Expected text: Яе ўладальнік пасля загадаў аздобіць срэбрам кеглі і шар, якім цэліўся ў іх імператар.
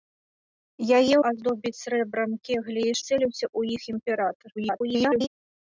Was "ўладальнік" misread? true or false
true